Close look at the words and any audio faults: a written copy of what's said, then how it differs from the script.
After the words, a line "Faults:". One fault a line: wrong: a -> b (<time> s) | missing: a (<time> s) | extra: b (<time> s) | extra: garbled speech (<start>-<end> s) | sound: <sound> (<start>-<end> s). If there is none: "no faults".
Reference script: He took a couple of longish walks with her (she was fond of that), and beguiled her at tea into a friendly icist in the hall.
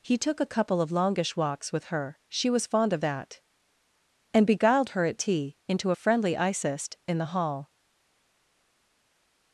He took a couple of longish walks with her (she was fond of that), and beguiled her at tea into a friendly icist in the hall.
Faults:
no faults